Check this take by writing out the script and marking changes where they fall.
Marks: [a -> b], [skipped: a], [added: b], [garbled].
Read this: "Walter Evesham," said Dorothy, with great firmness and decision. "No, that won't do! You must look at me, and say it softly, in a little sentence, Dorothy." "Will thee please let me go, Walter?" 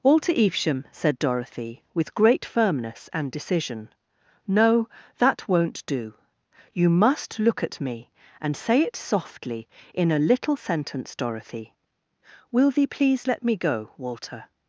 "Walter Evesham," said Dorothy, with great firmness and decision. "No, that won't do! You must look at me, and say it softly, in a little sentence, Dorothy." "Will thee please let me go, Walter?"